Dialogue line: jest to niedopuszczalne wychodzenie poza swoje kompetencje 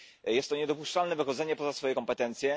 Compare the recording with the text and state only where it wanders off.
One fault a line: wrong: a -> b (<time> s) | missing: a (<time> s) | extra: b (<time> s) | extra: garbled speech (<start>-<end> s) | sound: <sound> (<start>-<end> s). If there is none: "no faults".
no faults